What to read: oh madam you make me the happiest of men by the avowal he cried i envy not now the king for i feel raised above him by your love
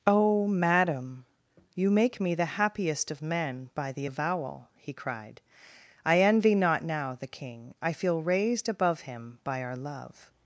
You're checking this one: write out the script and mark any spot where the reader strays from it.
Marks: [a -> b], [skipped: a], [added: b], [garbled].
oh madam you make me the happiest of men by the avowal he cried i envy not now the king [skipped: for] i feel raised above him by [your -> our] love